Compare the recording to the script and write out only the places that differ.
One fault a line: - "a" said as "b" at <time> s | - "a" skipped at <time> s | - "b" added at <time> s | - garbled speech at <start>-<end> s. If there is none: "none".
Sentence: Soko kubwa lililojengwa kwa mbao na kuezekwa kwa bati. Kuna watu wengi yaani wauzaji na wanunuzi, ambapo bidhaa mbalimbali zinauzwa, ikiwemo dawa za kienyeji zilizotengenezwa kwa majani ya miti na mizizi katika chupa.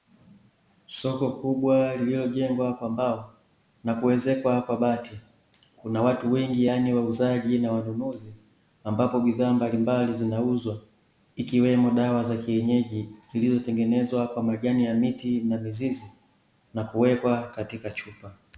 - "na kuwekwa" added at 16.7 s